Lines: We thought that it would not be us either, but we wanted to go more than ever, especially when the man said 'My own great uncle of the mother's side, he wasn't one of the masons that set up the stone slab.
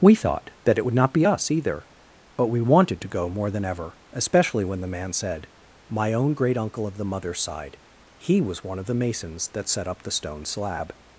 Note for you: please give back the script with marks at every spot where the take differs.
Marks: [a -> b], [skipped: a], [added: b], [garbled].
We thought that it would not be us either, but we wanted to go more than ever, especially when the man said 'My own great uncle of the mother's side, he [wasn't -> was] one of the masons that set up the stone slab.